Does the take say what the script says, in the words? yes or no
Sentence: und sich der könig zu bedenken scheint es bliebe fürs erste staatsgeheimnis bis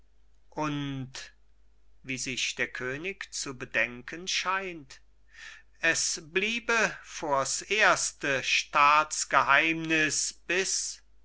no